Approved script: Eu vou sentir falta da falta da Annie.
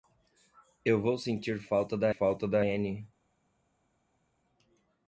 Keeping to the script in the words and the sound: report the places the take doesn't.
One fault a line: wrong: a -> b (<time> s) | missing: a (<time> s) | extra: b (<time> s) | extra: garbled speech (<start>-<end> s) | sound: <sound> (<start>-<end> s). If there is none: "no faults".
no faults